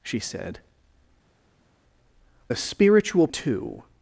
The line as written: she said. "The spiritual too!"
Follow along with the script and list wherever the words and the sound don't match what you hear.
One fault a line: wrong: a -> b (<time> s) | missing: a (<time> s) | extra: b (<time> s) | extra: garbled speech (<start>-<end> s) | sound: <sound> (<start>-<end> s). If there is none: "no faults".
no faults